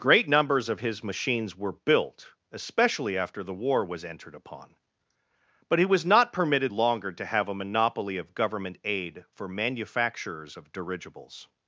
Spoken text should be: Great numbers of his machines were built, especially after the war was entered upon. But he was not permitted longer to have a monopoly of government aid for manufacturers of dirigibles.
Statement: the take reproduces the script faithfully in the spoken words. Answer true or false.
true